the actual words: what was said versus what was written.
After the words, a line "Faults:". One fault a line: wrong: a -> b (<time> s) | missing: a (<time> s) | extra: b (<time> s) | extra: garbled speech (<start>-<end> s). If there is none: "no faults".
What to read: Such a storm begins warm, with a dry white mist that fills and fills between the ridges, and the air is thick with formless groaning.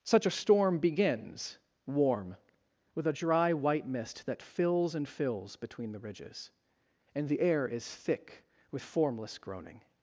Such a storm begins warm, with a dry white mist that fills and fills between the ridges, and the air is thick with formless groaning.
Faults:
no faults